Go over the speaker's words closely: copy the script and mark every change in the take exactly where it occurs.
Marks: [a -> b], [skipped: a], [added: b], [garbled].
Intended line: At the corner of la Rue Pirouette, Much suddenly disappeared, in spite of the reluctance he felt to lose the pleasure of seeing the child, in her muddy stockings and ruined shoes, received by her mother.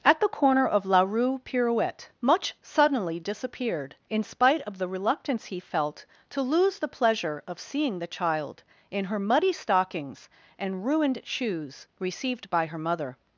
At the corner of la Rue Pirouette, Much suddenly disappeared, in spite of the reluctance he felt to lose the pleasure of seeing the child, in her muddy stockings and ruined shoes, received by her mother.